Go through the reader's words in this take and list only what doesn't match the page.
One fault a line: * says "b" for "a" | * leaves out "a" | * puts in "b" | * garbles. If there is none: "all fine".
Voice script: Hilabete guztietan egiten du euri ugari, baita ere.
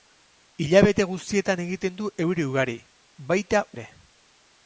all fine